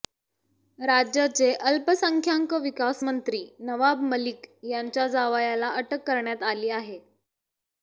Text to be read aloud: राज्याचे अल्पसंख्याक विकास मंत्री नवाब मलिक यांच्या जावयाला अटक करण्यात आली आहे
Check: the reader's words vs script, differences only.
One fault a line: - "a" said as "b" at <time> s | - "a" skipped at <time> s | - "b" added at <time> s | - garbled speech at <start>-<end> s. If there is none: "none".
none